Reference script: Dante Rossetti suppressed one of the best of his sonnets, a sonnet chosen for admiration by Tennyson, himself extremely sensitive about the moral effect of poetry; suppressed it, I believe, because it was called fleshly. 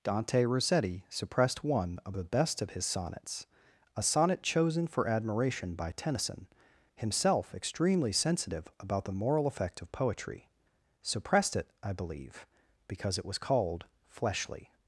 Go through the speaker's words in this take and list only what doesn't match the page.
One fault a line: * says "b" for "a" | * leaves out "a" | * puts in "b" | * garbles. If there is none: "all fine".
all fine